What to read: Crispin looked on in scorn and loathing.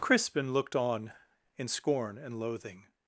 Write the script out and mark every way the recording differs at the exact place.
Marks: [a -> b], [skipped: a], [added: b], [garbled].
Crispin looked on in scorn and loathing.